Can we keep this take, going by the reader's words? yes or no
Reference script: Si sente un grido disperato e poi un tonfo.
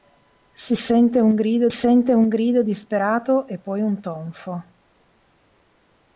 no